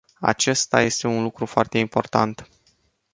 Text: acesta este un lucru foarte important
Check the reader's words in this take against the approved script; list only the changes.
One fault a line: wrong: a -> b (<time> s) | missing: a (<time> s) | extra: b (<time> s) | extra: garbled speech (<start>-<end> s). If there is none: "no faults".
no faults